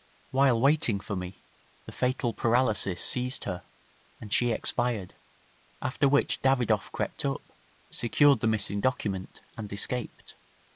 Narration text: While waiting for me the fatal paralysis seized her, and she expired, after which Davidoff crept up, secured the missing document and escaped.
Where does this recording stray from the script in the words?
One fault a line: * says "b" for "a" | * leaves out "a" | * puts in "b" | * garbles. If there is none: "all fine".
all fine